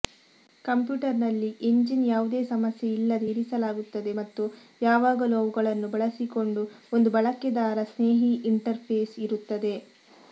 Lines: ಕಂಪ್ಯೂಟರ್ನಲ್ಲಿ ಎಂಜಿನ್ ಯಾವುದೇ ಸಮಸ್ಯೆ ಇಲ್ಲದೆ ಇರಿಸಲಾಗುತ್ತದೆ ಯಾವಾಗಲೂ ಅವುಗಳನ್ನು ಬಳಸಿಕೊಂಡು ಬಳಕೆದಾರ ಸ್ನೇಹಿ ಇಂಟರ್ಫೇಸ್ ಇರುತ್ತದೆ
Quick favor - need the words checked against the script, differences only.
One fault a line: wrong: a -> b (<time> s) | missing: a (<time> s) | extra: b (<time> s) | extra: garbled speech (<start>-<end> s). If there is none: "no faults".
extra: ಮತ್ತು (4.2 s)
extra: ಒಂದು (6.9 s)